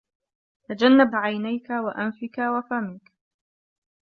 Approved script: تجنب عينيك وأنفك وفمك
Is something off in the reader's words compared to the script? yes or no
no